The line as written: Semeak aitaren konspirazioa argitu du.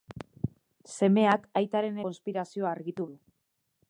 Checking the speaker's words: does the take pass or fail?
pass